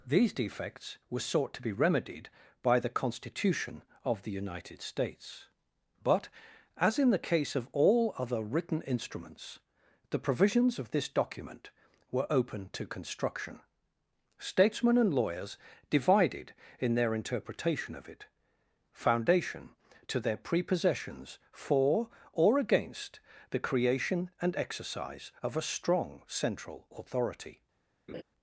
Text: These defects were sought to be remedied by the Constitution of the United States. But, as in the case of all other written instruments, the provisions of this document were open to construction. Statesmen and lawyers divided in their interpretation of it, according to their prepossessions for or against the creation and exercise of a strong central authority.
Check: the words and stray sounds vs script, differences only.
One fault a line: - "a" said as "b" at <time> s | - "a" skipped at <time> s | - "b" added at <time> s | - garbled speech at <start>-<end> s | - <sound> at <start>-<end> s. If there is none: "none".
- "according" said as "foundation" at 18.9 s
- laugh at 28.1-28.2 s